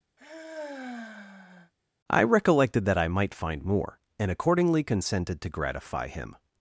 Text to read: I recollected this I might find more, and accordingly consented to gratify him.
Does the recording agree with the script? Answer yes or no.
no